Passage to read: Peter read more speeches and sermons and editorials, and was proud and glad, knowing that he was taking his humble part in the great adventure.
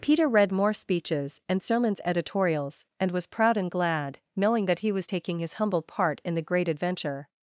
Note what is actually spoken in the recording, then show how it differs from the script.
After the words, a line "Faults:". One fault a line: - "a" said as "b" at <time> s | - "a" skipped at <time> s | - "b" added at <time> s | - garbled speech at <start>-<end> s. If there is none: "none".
Peter read more speeches and sermons editorials, and was proud and glad, knowing that he was taking his humble part in the great adventure.
Faults:
- "and" skipped at 2.0 s